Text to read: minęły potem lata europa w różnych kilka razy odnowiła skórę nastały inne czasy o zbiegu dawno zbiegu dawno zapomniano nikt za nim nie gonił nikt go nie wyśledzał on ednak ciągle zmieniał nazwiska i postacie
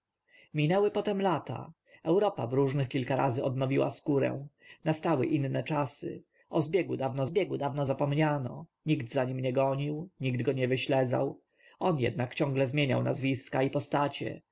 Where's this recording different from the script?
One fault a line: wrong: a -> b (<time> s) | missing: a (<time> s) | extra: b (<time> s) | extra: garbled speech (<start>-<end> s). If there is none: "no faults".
no faults